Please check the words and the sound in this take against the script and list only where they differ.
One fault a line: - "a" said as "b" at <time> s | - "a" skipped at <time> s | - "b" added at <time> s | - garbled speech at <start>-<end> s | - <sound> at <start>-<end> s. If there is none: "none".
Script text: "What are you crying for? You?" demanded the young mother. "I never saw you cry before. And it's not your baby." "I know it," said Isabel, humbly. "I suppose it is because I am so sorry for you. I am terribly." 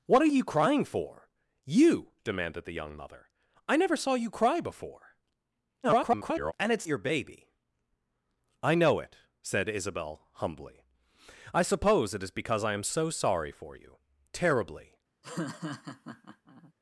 - garbled speech at 5.8-6.5 s
- "not" skipped at 6.9 s
- "I am" skipped at 14.0 s
- laugh at 15.2-16.7 s